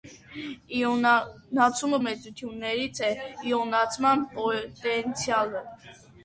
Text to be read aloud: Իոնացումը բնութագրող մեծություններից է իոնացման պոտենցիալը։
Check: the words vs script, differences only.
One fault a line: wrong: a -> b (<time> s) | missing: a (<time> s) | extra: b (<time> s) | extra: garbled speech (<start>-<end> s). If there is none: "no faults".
missing: բնութագրող (2.0 s)